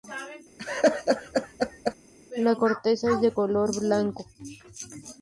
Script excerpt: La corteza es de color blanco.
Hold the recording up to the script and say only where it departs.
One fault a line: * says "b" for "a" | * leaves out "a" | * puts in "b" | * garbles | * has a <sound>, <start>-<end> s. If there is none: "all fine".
* has a laugh, 0.6-2.0 s